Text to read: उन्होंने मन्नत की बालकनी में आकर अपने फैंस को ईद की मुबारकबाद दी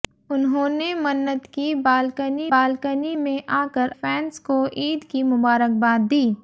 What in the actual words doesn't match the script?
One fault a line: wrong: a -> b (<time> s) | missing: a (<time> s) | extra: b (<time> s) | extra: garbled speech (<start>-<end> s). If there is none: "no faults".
extra: बालकनी (2.5 s)
missing: अपने (3.9 s)